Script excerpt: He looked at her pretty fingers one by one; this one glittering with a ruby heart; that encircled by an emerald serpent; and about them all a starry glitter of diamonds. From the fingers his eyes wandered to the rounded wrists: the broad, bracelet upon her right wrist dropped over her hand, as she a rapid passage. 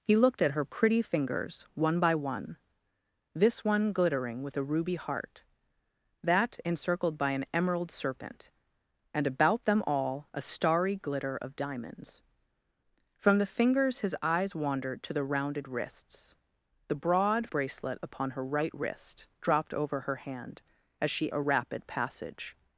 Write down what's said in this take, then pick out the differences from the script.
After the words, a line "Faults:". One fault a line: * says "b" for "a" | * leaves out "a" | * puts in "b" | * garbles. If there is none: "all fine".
He looked at her pretty fingers one by one; this one glittering with a ruby heart; that encircled by an emerald serpent; and about them all a starry glitter of diamonds. From the fingers his eyes wandered to the rounded wrists: the broad, bracelet upon her right wrist dropped over her hand, as she a rapid passage.
Faults:
all fine